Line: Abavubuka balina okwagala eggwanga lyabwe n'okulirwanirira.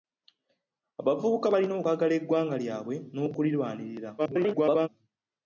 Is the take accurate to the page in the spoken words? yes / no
no